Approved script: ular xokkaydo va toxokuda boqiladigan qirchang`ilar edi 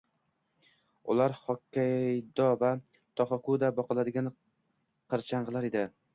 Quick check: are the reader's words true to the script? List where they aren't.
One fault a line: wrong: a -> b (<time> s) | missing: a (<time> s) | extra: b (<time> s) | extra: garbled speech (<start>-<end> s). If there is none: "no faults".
no faults